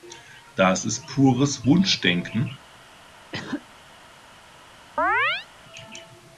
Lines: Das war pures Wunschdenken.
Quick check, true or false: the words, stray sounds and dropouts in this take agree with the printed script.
false